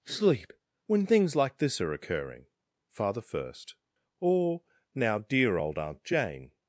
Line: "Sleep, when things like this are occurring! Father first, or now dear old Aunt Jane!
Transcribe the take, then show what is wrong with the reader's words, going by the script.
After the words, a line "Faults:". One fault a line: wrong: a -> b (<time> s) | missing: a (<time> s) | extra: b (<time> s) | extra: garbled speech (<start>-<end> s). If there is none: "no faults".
"Sleep, when things like this are occurring! Father first, or now dear old Aunt Jane!
Faults:
no faults